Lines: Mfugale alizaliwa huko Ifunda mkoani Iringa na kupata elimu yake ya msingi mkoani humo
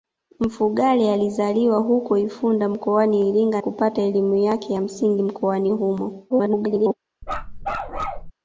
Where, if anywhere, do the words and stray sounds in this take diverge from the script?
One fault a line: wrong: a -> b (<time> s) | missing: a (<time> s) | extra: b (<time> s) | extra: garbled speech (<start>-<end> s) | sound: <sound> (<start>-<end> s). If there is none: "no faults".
missing: na (3.6 s)
extra: garbled speech (6.3-6.9 s)
sound: bark (7.2-8.3 s)